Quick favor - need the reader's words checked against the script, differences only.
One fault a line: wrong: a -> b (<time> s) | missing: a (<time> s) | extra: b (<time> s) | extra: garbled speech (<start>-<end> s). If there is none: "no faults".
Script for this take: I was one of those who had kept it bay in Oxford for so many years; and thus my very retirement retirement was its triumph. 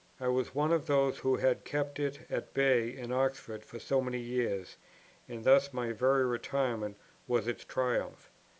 extra: at (2.3 s)
missing: retirement (7.0 s)